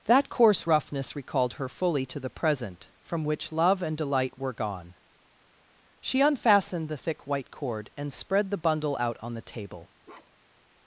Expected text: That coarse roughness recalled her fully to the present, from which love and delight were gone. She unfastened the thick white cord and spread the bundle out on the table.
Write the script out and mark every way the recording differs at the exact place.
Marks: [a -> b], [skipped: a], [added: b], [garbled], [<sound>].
That coarse roughness recalled her fully to the present, from which love and delight were gone. She unfastened the thick white cord and spread the bundle out on the table. [bark]